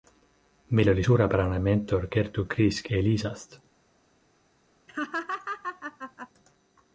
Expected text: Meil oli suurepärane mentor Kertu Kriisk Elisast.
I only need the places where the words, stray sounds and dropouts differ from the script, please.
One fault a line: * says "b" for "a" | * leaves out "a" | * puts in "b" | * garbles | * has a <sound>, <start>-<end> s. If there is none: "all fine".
* has a laugh, 4.9-6.3 s